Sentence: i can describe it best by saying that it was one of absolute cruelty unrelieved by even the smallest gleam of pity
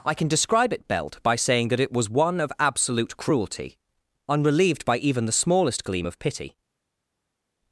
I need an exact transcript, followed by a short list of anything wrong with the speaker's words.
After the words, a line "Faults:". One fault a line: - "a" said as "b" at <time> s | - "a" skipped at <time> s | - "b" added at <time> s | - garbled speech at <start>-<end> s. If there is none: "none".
i can describe it belt by saying that it was one of absolute cruelty unrelieved by even the smallest gleam of pity
Faults:
- "best" said as "belt" at 0.9 s